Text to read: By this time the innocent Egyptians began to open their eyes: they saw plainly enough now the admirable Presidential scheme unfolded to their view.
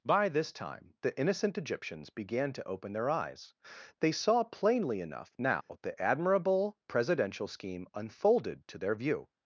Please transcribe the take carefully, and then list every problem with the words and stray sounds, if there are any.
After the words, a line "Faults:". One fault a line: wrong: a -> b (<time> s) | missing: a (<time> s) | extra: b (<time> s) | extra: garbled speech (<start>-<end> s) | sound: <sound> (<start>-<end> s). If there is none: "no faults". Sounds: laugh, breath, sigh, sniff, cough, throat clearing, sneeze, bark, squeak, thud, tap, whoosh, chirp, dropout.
By this time the innocent Egyptians began to open their eyes: they saw plainly enough now the admirable Presidential scheme unfolded to their view.
Faults:
sound: dropout (5.6-5.7 s)